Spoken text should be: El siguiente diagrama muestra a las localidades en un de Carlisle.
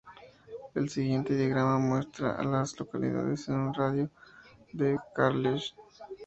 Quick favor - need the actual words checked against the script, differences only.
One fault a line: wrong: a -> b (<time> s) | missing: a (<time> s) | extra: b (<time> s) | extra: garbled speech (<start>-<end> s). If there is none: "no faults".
extra: radio de (3.7 s)